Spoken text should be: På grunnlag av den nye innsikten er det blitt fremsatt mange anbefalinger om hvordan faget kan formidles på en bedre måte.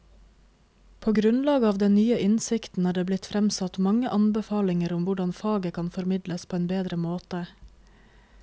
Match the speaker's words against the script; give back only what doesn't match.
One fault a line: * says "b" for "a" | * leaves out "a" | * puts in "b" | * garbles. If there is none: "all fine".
all fine